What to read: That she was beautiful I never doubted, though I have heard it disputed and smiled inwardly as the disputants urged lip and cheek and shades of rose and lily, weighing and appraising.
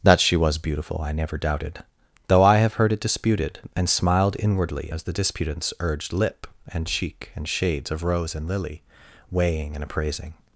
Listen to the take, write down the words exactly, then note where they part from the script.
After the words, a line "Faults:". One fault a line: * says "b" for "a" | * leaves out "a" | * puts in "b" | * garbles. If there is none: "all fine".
That she was beautiful I never doubted, though I have heard it disputed and smiled inwardly as the disputants urged lip and cheek and shades of rose and lily, weighing and appraising.
Faults:
all fine